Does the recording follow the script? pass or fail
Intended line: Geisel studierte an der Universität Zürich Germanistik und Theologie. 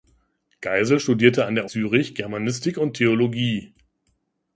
fail